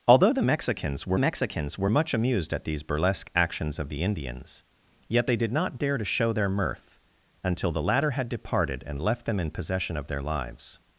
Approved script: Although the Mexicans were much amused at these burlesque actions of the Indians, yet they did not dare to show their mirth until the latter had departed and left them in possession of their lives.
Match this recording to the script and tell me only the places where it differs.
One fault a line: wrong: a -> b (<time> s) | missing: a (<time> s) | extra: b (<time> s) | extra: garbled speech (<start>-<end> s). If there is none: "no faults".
extra: Mexicans were (1.1 s)